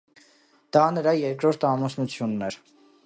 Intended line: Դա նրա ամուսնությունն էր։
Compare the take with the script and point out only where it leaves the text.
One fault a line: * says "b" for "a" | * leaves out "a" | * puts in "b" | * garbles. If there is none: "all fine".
* puts in "երկրորդ"